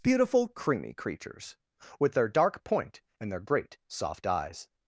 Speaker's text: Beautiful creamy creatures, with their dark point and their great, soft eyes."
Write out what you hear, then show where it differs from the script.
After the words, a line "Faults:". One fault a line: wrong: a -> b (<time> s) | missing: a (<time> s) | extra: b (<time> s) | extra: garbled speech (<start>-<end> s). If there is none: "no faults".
Beautiful creamy creatures, with their dark point and their great, soft eyes."
Faults:
no faults